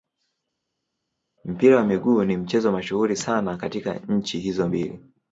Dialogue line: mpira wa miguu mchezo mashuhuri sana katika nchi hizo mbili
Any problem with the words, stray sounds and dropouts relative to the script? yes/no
yes